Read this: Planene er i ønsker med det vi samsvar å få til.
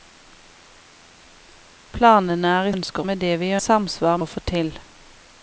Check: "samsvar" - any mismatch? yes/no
no